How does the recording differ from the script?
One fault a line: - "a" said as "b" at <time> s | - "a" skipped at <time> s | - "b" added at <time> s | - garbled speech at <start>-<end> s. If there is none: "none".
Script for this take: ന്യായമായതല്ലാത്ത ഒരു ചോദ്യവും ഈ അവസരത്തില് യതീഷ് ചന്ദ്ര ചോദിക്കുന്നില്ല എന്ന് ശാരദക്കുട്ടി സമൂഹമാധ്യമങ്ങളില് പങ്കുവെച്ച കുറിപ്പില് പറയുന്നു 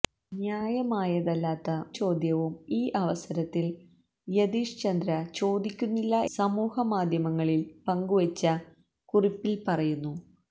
- "ഒരു" skipped at 1.7 s
- "എന്ന് ശാരദക്കുട്ടി" skipped at 6.2 s